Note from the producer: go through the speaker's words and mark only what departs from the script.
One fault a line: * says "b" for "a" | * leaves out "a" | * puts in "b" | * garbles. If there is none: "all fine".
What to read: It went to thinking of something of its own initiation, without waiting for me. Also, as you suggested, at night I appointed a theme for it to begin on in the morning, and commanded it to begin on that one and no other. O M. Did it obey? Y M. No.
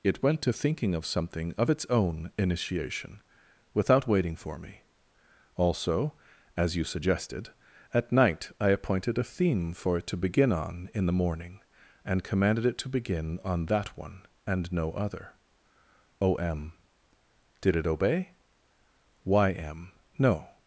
all fine